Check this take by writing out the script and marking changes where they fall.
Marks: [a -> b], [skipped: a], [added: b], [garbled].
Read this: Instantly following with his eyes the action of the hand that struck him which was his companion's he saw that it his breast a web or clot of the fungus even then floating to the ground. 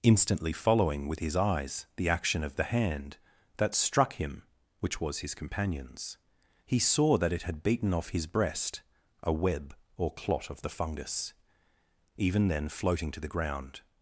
Instantly following with his eyes the action of the hand that struck him which was his companion's he saw that it [added: had beaten off] his breast a web or clot of the fungus even then floating to the ground.